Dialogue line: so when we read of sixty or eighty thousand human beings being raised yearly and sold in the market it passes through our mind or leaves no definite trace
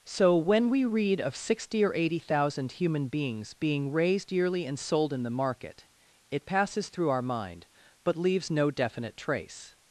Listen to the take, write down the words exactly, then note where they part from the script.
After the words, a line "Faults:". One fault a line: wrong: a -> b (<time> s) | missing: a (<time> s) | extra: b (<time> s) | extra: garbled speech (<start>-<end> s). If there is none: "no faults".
so when we read of sixty or eighty thousand human beings being raised yearly and sold in the market it passes through our mind but leaves no definite trace
Faults:
wrong: or -> but (8.0 s)